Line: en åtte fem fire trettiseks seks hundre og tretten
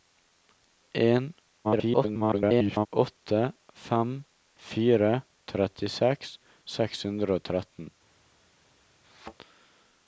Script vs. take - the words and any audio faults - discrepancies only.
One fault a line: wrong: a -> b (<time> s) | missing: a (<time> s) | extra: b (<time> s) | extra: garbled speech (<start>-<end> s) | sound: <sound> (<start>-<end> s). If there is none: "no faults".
extra: garbled speech (1.6-2.9 s)
sound: thud (9.0-9.3 s)